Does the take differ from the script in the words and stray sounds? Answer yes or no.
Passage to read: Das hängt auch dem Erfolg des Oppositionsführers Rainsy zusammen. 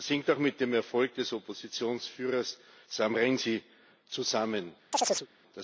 yes